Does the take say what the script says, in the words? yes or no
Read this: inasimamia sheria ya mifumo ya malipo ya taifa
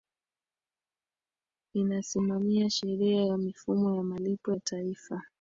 yes